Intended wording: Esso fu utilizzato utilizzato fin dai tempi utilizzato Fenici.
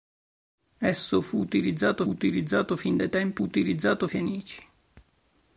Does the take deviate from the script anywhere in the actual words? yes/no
no